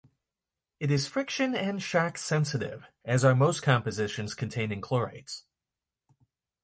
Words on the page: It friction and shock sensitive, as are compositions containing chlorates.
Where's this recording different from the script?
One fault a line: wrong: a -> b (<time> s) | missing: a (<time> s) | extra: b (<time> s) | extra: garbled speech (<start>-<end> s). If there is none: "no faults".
extra: is (0.9 s)
extra: most (3.3 s)